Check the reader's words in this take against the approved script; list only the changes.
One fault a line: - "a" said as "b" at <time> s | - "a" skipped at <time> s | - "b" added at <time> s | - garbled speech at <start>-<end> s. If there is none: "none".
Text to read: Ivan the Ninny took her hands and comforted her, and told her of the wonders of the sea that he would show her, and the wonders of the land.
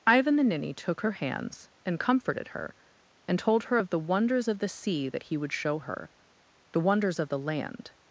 - "and" skipped at 6.1 s